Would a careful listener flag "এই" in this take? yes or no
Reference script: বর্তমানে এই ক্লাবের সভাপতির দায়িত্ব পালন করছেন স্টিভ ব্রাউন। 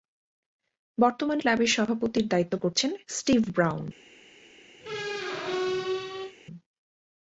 yes